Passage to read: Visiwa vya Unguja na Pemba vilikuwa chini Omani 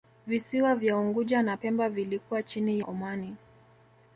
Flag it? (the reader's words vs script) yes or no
no